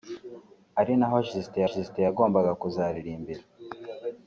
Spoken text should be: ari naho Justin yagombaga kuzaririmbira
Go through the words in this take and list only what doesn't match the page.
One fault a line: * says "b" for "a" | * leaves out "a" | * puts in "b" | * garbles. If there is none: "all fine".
* puts in "Justin"